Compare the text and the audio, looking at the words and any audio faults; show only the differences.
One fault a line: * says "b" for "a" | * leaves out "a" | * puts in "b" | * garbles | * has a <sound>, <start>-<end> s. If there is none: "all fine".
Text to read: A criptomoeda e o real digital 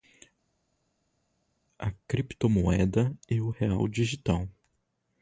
all fine